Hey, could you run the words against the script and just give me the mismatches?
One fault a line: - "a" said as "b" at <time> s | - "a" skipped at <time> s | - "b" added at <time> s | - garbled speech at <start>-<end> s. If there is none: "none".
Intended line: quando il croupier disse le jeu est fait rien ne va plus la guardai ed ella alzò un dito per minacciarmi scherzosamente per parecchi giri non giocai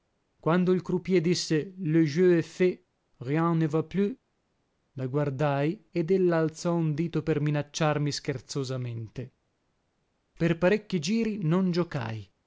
none